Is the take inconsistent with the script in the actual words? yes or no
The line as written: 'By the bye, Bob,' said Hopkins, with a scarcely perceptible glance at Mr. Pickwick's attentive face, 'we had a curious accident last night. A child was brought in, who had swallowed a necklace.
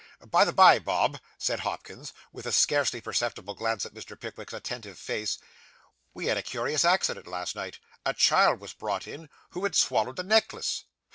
no